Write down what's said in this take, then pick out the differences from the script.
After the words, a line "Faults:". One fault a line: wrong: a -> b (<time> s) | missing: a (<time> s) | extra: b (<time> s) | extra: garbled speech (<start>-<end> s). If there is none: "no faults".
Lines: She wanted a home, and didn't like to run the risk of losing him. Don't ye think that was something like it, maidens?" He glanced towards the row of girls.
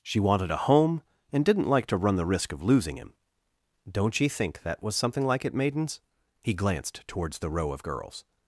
She wanted a home, and didn't like to run the risk of losing him. Don't ye think that was something like it, maidens?" He glanced towards the row of girls.
Faults:
no faults